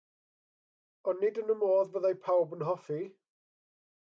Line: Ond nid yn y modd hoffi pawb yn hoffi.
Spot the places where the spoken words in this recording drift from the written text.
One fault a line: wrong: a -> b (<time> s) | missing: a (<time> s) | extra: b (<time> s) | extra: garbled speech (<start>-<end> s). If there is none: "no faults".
wrong: hoffi -> fyddai (2.0 s)